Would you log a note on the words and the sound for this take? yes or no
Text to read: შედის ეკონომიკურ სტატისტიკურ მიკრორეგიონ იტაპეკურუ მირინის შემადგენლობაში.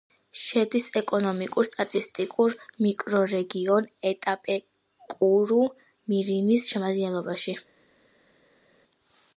no